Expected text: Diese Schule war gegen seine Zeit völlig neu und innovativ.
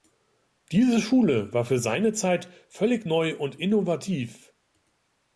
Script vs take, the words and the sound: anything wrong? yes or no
yes